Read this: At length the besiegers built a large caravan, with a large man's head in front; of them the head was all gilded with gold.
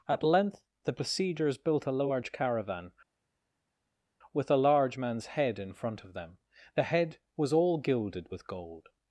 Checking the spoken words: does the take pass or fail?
pass